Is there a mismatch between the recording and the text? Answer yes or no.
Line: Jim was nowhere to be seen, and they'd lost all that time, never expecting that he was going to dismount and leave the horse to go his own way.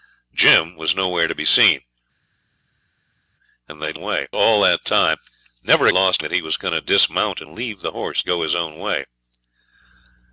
yes